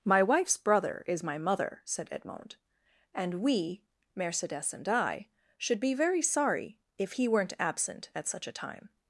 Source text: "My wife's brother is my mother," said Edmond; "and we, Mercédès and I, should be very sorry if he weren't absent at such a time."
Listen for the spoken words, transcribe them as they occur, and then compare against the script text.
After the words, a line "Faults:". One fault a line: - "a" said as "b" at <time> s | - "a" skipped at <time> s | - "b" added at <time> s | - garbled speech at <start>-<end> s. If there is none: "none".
"My wife's brother is my mother," said Edmond; "and we, Mercédès and I, should be very sorry if he weren't absent at such a time."
Faults:
none